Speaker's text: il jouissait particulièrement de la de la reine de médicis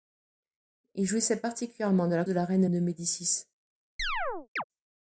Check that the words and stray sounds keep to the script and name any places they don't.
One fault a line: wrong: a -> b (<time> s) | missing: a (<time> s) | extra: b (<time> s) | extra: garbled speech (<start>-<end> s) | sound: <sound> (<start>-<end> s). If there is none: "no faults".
sound: chirp (4.0-4.6 s)